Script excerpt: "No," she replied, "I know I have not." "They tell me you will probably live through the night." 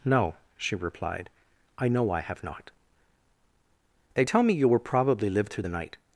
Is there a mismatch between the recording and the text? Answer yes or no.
no